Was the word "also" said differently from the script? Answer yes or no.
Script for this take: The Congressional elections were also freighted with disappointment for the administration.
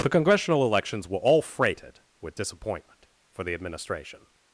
yes